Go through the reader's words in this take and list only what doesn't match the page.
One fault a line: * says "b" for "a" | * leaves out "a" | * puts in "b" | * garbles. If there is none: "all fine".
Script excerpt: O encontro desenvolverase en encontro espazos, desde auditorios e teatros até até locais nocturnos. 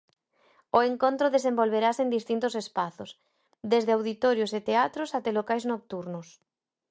* says "distintos" for "encontro"
* leaves out "até"